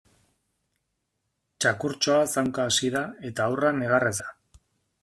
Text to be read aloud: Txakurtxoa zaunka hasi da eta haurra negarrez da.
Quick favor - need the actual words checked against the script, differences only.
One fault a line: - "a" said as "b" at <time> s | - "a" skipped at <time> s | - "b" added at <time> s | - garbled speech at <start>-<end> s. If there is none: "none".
none